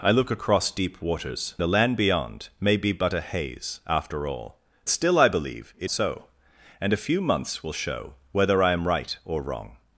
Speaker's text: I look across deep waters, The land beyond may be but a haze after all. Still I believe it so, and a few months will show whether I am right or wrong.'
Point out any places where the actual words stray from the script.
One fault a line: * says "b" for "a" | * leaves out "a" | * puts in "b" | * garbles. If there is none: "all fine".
all fine